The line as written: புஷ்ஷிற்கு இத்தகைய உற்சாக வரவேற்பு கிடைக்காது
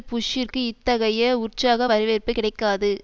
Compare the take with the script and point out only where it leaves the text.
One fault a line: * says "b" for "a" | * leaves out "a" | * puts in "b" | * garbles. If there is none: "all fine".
all fine